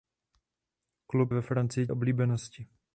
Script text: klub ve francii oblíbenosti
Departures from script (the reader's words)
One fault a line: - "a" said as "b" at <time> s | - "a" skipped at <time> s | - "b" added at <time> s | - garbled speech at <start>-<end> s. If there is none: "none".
none